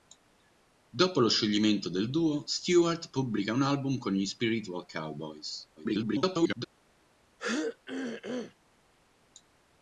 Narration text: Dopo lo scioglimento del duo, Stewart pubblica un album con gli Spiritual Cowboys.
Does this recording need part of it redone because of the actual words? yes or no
yes